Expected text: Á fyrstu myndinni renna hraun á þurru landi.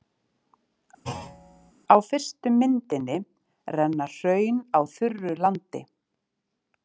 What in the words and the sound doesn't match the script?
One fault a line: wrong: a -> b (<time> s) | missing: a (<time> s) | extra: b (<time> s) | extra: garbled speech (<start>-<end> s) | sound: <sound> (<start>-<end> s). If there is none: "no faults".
sound: thud (1.0-1.7 s)